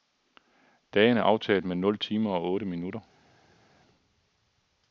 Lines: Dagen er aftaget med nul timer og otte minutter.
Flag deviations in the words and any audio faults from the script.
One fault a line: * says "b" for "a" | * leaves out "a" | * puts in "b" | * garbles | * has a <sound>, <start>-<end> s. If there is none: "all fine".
all fine